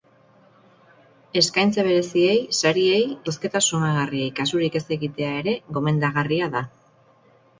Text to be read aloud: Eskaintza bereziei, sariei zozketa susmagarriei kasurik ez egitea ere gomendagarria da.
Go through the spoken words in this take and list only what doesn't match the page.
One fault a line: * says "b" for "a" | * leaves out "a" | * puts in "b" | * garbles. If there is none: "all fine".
all fine